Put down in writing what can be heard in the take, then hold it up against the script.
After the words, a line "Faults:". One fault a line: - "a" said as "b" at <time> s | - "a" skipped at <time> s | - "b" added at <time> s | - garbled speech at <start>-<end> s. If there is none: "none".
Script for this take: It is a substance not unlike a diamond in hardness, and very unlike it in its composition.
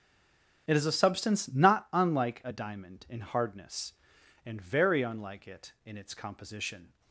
It is a substance not unlike a diamond in hardness, and very unlike it in its composition.
Faults:
none